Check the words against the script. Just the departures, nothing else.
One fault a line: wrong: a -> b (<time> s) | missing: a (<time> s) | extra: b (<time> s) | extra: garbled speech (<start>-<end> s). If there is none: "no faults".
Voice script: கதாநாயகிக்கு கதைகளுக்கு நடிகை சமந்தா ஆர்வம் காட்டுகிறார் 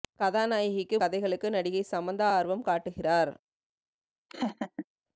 no faults